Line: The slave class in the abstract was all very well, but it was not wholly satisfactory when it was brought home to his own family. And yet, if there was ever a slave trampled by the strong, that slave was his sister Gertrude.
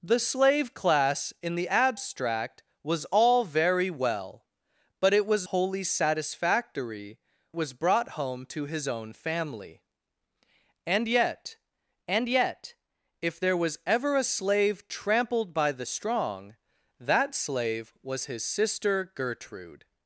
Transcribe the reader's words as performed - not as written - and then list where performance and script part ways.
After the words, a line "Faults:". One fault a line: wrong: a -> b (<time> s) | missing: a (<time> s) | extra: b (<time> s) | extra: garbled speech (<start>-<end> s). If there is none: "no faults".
The slave class in the abstract was all very well, but it was wholly satisfactory was brought home to his own family. And yet and yet, if there was ever a slave trampled by the strong, that slave was his sister Gertrude.
Faults:
missing: not (5.5 s)
missing: when it (7.2 s)
extra: and yet (12.1 s)